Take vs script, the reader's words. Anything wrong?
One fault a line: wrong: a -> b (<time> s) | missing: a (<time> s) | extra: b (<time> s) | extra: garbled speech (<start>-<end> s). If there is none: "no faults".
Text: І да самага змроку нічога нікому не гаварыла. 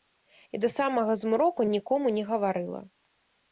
missing: нічога (1.7 s)